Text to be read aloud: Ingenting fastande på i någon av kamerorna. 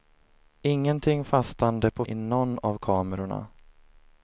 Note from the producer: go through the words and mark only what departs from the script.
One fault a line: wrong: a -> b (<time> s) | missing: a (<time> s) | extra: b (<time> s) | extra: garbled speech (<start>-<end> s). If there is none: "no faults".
no faults